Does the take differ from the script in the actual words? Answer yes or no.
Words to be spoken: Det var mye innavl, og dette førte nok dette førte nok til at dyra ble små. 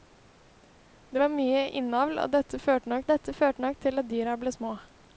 no